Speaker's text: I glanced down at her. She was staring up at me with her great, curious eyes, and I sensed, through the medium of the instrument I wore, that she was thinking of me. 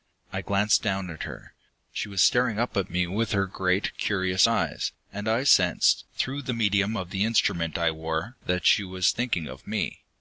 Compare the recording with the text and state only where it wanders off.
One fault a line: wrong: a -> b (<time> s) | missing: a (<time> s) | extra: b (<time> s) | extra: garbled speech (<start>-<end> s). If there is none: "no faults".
no faults